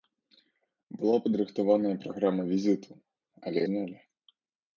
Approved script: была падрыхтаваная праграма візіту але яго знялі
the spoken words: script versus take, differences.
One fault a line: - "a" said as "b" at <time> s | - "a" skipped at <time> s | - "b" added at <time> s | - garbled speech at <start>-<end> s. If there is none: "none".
- "яго" skipped at 3.6 s